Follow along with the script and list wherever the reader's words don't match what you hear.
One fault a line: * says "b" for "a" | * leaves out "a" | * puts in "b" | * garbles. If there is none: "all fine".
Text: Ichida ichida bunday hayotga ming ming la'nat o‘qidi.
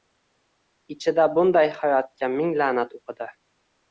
* leaves out "ichida"
* leaves out "ming"